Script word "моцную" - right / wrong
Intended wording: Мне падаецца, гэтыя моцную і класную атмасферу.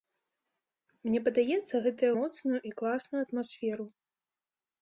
right